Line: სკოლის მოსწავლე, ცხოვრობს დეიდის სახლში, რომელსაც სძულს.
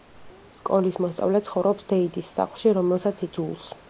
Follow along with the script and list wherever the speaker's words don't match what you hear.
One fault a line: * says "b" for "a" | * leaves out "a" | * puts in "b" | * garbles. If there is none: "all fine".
all fine